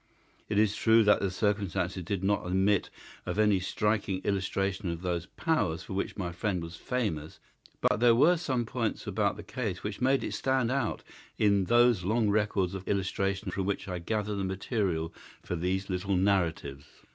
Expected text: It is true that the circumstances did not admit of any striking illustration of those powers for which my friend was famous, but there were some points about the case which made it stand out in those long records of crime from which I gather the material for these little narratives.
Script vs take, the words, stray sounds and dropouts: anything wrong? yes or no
yes